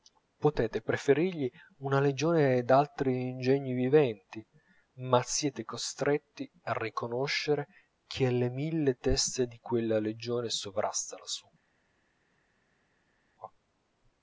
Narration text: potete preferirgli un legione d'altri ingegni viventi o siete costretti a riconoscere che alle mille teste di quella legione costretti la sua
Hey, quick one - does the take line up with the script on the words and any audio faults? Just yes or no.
no